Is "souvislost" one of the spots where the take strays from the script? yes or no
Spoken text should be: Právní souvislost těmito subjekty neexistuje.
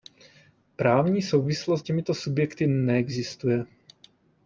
no